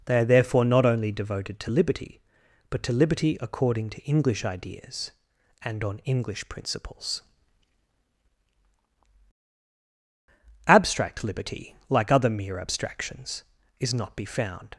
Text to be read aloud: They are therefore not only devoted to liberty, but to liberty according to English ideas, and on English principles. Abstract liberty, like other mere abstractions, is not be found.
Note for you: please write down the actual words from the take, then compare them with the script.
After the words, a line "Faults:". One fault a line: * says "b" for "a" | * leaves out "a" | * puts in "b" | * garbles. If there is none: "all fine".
They are therefore not only devoted to liberty, but to liberty according to English ideas, and on English principles. Abstract liberty, like other mere abstractions, is not be found.
Faults:
all fine